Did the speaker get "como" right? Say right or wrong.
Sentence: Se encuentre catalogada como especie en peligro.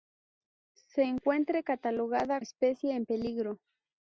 wrong